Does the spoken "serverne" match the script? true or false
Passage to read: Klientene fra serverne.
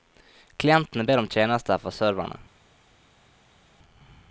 true